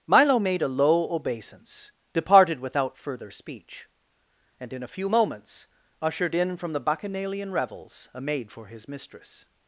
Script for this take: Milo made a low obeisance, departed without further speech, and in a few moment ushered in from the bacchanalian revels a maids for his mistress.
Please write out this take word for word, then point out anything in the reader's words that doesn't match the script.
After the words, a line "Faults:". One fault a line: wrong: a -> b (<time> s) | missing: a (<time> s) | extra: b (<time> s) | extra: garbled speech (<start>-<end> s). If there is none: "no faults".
Milo made a low obeisance, departed without further speech, and in a few moments ushered in from the bacchanalian revels a maid for his mistress.
Faults:
wrong: moment -> moments (5.1 s)
wrong: maids -> maid (8.2 s)